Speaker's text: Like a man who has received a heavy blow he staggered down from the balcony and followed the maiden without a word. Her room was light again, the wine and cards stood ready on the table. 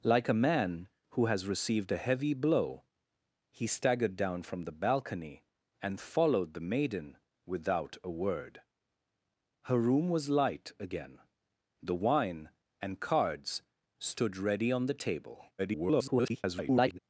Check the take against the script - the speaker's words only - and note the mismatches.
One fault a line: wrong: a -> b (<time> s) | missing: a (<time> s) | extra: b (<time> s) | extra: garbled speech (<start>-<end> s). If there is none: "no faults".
extra: garbled speech (15.6-17.0 s)